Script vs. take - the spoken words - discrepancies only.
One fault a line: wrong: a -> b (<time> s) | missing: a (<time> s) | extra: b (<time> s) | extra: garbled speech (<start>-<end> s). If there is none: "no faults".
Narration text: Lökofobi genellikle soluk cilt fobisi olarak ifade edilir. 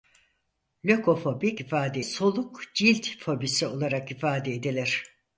wrong: genellikle -> ifade (1.6 s)